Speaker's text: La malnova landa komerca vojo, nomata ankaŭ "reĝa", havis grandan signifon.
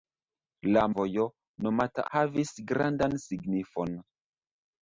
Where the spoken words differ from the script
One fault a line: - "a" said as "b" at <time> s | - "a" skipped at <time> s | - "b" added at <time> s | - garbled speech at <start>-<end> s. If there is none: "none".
- "malnova landa komerca" skipped at 0.8 s
- "ankaŭ reĝa" skipped at 2.1 s